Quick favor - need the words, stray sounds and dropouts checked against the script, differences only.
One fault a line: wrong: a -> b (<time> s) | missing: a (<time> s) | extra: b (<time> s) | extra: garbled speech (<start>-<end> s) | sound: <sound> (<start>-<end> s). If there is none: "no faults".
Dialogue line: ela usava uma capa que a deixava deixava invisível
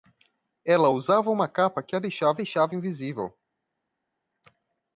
no faults